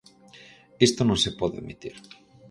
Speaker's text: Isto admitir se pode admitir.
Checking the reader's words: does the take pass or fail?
fail